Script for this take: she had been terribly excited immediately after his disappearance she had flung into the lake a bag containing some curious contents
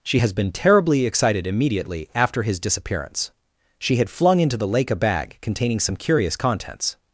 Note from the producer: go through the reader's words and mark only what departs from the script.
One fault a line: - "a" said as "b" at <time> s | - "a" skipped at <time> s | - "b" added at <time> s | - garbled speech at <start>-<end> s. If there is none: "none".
- "had" said as "has" at 0.2 s